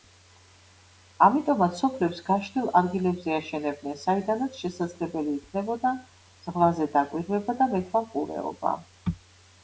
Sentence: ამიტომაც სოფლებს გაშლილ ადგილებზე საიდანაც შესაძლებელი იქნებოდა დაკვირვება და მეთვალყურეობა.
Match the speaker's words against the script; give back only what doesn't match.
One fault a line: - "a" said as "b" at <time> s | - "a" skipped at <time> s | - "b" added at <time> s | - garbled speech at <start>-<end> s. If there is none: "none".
- "აშენებდნენ" added at 3.4 s
- "ზღვაზე" added at 6.5 s